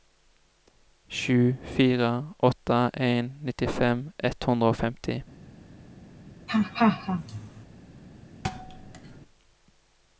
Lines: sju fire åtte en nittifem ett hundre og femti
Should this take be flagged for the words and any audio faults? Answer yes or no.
yes